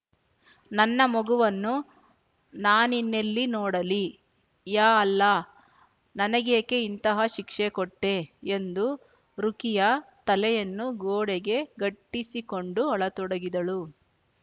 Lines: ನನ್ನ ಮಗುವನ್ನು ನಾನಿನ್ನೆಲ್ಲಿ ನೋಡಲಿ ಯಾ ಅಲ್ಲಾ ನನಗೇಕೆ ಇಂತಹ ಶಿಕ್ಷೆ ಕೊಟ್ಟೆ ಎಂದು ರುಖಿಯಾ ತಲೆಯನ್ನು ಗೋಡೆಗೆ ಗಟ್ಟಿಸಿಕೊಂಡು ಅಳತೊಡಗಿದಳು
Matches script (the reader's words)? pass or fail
pass